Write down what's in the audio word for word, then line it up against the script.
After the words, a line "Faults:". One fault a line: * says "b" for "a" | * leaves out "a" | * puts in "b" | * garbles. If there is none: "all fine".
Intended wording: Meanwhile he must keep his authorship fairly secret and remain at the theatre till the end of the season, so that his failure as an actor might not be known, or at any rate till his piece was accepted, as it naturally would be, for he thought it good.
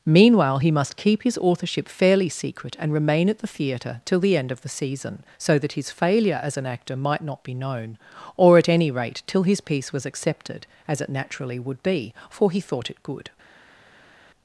Meanwhile he must keep his authorship fairly secret and remain at the theatre till the end of the season, so that his failure as an actor might not be known, or at any rate till his piece was accepted, as it naturally would be, for he thought it good.
Faults:
all fine